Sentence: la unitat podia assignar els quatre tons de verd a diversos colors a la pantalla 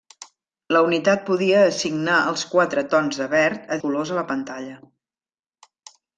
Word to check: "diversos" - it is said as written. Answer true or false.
false